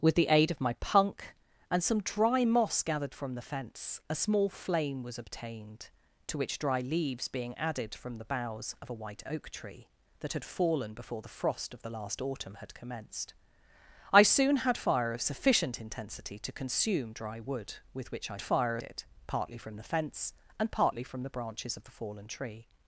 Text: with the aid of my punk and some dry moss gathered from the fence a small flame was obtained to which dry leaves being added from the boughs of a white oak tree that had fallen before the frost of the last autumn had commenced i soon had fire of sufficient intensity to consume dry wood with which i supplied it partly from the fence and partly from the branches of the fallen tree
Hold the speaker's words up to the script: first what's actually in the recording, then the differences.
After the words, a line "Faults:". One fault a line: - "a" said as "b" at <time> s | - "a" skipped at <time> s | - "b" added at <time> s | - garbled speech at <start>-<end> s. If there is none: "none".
with the aid of my punk and some dry moss gathered from the fence a small flame was obtained to which dry leaves being added from the boughs of a white oak tree that had fallen before the frost of the last autumn had commenced i soon had fire of sufficient intensity to consume dry wood with which i fire it partly from the fence and partly from the branches of the fallen tree
Faults:
- "supplied" said as "fire" at 18.4 s